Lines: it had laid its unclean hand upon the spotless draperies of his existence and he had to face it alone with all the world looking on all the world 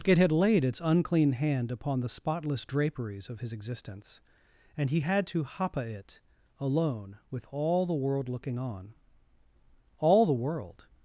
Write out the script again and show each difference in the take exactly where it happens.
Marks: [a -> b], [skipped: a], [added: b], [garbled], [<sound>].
it had laid its unclean hand upon the spotless draperies of his existence and he had to [face -> hapa] it alone with all the world looking on all the world